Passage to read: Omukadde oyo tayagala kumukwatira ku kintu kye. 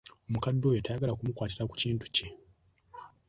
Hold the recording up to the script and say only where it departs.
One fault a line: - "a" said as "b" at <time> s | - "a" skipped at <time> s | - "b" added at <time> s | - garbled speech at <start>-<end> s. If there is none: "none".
none